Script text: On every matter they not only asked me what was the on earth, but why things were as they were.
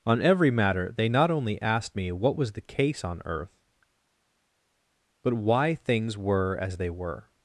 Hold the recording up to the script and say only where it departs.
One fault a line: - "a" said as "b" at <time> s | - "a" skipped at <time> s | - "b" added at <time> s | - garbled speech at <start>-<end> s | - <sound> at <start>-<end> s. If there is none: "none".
- "case" added at 2.6 s